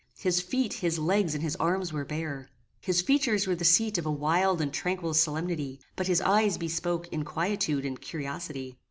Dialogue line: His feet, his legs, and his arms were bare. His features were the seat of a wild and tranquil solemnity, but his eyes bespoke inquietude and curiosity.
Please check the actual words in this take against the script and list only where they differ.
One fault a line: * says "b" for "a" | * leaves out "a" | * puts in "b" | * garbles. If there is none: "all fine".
all fine